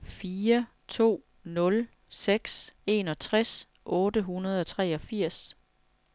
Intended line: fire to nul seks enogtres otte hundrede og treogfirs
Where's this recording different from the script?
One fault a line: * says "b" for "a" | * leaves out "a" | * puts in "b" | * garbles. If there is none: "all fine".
all fine